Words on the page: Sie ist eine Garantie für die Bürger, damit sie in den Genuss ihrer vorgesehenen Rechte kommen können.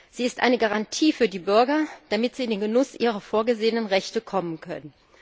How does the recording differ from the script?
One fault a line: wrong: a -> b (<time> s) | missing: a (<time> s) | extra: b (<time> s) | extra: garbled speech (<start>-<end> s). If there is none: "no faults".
no faults